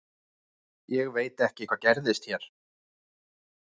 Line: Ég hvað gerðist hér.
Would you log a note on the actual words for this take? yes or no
yes